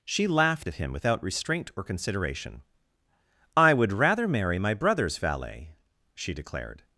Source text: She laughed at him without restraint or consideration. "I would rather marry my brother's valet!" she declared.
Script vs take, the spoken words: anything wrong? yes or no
no